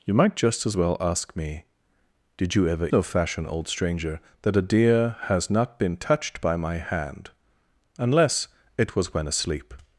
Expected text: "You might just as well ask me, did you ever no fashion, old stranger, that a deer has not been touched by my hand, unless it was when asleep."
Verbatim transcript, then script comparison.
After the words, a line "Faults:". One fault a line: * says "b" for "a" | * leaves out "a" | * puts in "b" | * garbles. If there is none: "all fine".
"You might just as well ask me, did you ever no fashion, old stranger, that a deer has not been touched by my hand, unless it was when asleep."
Faults:
all fine